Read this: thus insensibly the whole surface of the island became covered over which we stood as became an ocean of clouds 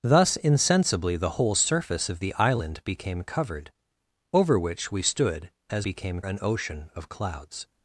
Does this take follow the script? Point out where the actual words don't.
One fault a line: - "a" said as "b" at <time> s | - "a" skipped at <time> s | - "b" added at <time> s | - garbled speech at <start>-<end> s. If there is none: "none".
none